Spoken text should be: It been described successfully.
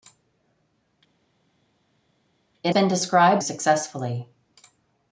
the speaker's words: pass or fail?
pass